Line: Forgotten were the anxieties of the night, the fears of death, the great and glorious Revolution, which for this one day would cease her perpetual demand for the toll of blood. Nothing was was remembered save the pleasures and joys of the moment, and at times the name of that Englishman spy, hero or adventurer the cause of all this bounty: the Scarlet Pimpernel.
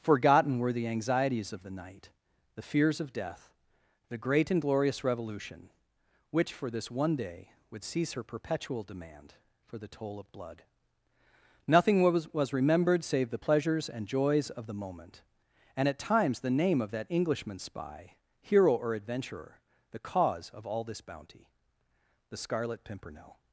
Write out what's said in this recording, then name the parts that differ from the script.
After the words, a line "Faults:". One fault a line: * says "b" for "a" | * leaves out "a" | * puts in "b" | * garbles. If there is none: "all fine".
Forgotten were the anxieties of the night, the fears of death, the great and glorious Revolution, which for this one day would cease her perpetual demand for the toll of blood. Nothing was was remembered save the pleasures and joys of the moment, and at times the name of that Englishman spy, hero or adventurer the cause of all this bounty: the Scarlet Pimpernel.
Faults:
all fine